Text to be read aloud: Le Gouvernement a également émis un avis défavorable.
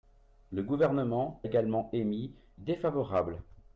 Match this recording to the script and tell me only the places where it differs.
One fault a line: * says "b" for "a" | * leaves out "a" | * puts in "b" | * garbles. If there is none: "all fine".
* leaves out "a"
* leaves out "un avis"